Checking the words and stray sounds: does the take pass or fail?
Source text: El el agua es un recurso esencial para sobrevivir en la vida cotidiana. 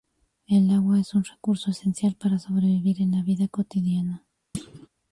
fail